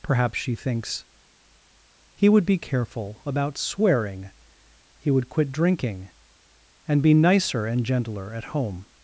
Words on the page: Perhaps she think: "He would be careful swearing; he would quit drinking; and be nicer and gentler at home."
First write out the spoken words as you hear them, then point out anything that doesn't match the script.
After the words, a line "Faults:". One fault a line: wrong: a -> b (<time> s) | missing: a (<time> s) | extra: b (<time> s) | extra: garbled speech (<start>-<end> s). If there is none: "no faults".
Perhaps she thinks: "He would be careful about swearing; he would quit drinking; and be nicer and gentler at home."
Faults:
wrong: think -> thinks (0.6 s)
extra: about (3.3 s)